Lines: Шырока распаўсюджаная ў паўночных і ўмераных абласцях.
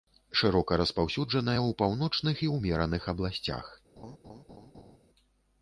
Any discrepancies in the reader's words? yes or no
no